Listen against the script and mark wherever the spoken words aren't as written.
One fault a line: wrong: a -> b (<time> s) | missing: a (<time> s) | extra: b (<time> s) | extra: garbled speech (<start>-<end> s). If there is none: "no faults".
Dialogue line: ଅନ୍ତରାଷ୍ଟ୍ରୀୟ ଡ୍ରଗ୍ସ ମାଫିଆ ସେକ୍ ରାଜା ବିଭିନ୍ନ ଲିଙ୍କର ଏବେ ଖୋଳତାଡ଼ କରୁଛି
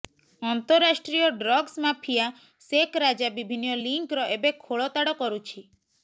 no faults